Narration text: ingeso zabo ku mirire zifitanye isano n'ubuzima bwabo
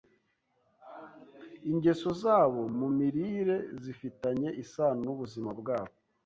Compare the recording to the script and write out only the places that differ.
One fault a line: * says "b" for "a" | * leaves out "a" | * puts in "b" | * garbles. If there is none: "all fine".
* says "mu" for "ku"